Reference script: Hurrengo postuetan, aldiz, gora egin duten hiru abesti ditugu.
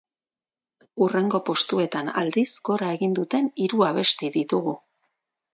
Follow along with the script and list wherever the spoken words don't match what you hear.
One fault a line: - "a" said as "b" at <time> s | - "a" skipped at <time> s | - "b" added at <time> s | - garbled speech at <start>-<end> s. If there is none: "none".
none